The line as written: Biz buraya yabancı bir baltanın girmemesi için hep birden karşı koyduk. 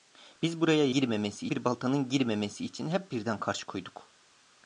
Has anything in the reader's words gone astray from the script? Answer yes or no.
yes